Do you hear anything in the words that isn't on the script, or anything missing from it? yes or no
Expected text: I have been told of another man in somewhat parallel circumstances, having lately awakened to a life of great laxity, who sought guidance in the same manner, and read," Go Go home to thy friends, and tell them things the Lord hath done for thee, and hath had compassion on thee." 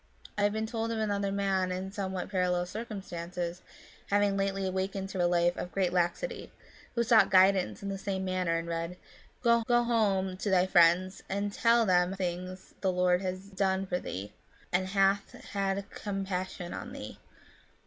no